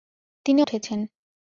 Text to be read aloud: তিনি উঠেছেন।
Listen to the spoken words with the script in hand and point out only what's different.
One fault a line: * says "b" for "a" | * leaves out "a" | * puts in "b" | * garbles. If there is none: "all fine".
all fine